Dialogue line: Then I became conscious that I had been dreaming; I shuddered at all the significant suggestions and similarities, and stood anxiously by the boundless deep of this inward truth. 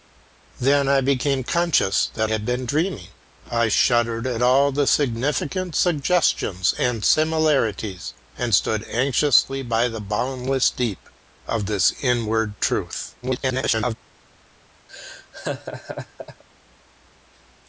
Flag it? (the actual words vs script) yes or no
yes